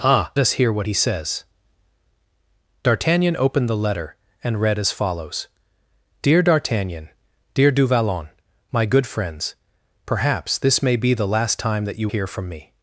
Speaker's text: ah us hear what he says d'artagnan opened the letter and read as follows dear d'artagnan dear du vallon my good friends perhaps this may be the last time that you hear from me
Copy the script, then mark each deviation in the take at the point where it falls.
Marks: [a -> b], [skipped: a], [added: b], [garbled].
ah us hear what he says d'artagnan opened the letter and read as follows dear d'artagnan dear du vallon my good friends perhaps this may be the last time that you hear from me